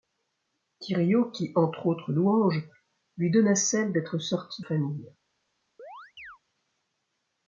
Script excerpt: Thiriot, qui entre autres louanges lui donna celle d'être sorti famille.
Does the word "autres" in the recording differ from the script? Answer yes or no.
no